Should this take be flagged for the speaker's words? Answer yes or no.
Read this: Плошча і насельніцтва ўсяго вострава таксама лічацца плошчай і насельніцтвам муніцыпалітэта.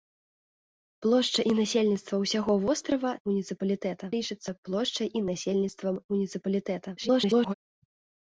yes